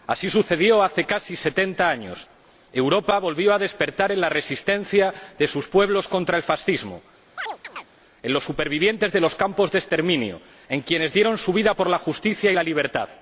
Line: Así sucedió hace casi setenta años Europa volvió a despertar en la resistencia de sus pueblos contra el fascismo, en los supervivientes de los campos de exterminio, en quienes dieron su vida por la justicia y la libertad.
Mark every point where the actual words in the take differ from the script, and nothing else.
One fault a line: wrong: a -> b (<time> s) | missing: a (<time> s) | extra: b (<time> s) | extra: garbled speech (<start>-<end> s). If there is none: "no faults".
no faults